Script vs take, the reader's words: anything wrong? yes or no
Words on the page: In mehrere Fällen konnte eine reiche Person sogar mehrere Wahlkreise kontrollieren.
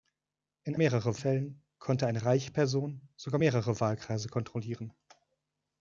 no